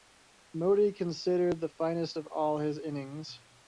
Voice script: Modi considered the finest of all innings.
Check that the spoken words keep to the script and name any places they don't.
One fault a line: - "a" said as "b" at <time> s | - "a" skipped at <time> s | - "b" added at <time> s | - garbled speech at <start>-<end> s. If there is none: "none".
- "his" added at 2.6 s